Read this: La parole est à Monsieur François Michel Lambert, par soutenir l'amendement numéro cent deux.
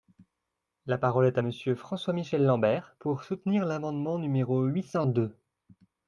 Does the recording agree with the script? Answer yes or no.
no